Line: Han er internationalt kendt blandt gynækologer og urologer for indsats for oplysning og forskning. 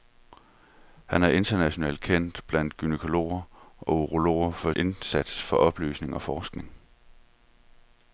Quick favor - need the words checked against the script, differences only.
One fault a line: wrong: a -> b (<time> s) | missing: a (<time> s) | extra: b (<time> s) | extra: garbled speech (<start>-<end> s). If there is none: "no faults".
no faults